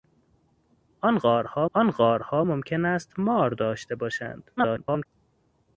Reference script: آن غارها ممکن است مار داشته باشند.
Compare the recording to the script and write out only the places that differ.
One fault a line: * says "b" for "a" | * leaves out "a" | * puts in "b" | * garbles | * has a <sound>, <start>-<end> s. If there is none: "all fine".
* puts in "آن غارها"
* garbles